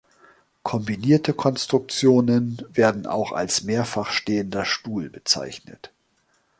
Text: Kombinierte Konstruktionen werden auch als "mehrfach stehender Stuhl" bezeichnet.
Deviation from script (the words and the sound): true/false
false